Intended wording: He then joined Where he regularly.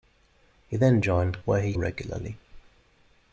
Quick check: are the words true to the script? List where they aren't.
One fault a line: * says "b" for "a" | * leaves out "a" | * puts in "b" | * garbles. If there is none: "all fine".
all fine